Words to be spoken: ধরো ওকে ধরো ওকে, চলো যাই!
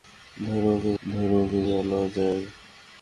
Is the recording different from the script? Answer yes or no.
no